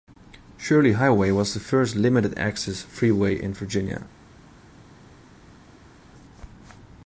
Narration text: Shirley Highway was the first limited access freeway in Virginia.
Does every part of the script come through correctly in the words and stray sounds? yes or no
yes